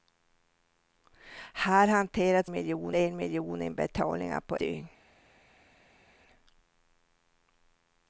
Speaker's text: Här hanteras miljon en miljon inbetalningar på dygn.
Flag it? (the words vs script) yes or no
no